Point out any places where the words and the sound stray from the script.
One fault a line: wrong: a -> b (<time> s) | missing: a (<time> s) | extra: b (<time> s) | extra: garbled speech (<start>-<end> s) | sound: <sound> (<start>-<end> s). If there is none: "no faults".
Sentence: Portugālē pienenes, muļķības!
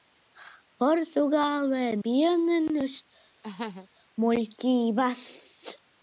sound: laugh (3.4-3.9 s)